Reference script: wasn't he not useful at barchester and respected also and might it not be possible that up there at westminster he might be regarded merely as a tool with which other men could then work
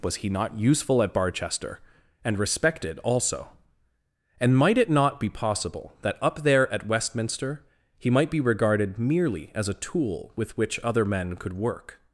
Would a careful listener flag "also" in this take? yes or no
no